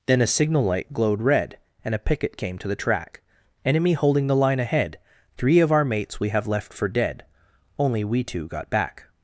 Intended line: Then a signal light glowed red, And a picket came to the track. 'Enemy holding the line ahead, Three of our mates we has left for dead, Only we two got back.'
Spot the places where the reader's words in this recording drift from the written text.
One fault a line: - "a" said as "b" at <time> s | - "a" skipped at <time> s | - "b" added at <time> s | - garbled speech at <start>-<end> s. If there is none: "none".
- "has" said as "have" at 6.3 s